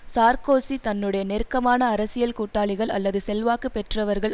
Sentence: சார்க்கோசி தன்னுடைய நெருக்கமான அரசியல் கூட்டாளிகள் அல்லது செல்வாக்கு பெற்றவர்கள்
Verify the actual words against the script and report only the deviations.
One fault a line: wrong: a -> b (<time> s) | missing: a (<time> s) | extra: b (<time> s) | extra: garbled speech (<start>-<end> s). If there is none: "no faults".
no faults